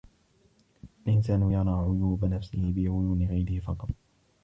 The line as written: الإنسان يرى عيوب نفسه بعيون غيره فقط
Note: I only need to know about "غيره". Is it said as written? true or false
true